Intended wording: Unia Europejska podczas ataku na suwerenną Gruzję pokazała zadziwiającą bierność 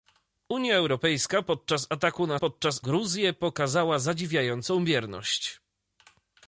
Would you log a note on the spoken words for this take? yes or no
yes